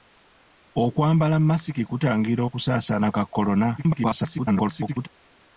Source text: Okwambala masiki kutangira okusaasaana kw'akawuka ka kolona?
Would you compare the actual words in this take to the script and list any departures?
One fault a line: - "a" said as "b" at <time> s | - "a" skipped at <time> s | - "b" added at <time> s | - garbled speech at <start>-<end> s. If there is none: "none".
- "kw'akawuka" skipped at 3.1 s
- garbled speech at 3.8-5.1 s